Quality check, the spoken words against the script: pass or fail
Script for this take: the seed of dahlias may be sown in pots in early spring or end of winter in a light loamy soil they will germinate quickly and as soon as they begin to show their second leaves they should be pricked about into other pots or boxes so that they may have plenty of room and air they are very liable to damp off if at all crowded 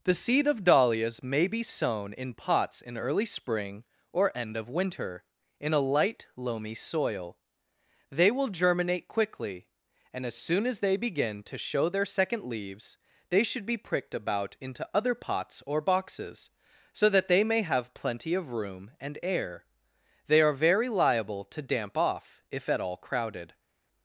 pass